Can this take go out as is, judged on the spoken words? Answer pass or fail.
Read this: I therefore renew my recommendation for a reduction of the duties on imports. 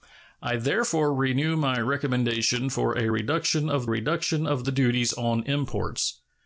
fail